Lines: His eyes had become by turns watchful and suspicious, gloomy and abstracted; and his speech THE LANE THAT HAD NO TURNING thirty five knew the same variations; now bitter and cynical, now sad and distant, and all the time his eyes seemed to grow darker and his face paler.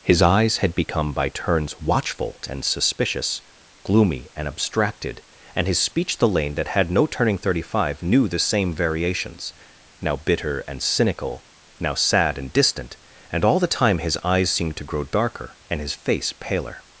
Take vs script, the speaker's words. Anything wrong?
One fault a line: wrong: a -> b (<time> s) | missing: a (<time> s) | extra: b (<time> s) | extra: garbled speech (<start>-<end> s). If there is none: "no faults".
no faults